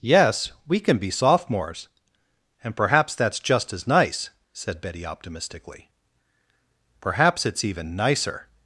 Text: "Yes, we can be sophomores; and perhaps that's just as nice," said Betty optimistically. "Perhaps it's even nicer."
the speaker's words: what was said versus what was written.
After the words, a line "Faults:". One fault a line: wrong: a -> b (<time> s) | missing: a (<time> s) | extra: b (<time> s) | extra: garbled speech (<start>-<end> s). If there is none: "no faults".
"Yes, we can be sophomores; and perhaps that's just as nice," said Betty optimistically. "Perhaps it's even nicer."
Faults:
no faults